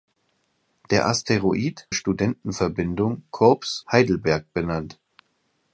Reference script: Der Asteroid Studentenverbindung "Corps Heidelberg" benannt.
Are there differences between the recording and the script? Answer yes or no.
no